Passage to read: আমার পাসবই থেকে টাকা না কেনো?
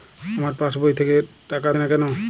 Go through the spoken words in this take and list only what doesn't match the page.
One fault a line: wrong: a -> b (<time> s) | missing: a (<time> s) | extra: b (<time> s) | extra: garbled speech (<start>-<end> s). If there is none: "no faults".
no faults